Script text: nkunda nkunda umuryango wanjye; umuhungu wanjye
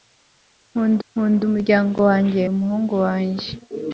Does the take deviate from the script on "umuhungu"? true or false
false